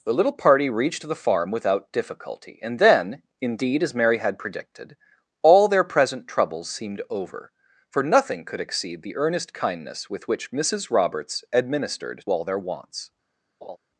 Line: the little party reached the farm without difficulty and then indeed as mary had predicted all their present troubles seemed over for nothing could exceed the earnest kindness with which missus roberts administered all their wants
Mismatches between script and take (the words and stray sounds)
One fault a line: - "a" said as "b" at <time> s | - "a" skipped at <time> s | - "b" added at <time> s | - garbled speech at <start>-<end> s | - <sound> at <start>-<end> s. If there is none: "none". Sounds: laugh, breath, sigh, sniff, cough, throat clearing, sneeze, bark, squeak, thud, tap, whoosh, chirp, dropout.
- laugh at 13.6-13.8 s